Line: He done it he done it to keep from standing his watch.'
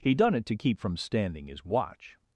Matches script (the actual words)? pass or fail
fail